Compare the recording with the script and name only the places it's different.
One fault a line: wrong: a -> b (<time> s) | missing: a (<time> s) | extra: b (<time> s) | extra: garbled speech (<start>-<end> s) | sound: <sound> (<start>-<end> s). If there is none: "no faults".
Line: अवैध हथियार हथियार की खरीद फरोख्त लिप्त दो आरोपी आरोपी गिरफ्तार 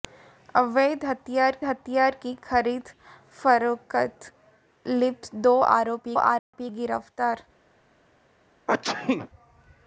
sound: dropout (6.4-6.5 s)
sound: sneeze (8.7-9.3 s)